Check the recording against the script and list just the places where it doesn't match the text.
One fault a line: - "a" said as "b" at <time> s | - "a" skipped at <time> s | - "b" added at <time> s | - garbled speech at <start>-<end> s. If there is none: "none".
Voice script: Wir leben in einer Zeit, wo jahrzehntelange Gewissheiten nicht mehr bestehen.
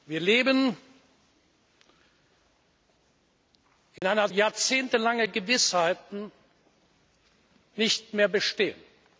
- "Zeit wo" skipped at 4.3 s